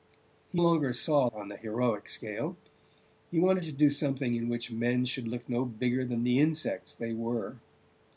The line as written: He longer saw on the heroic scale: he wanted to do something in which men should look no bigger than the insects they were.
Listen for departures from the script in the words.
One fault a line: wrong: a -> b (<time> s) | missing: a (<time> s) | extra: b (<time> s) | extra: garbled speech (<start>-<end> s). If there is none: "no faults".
no faults